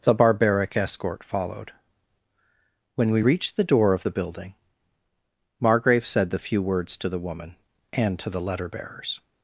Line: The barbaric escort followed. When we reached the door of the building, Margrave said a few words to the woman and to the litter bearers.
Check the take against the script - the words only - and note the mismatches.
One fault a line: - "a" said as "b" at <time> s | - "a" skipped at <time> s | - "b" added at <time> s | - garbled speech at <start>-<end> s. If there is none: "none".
- "a" said as "the" at 6.3 s
- "litter" said as "letter" at 8.4 s